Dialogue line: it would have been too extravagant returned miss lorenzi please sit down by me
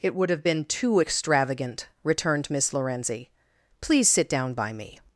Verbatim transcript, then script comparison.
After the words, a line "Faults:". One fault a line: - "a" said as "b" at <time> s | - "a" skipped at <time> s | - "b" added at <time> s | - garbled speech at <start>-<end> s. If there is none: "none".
it would have been too extravagant returned miss lorenzi please sit down by me
Faults:
none